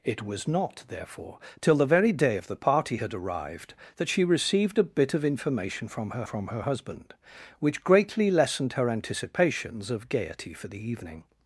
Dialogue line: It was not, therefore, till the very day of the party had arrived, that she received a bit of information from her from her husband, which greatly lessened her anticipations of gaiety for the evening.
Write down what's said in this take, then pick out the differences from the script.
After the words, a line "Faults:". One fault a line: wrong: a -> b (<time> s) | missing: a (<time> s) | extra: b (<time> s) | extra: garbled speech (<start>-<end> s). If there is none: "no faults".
It was not, therefore, till the very day of the party had arrived, that she received a bit of information from her from her husband, which greatly lessened her anticipations of gaiety for the evening.
Faults:
no faults